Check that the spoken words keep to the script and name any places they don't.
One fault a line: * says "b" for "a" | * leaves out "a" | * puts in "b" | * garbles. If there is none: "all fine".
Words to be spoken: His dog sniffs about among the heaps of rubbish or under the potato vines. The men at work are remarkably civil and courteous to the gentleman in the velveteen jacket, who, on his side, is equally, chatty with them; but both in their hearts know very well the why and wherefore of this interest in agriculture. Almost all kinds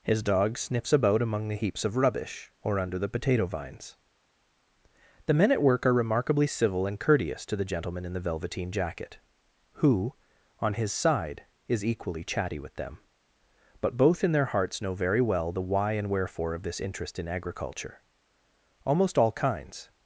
all fine